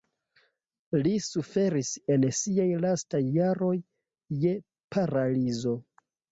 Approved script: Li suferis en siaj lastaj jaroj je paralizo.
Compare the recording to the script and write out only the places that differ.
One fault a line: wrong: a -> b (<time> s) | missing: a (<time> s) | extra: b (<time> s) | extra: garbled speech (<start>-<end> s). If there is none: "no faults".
no faults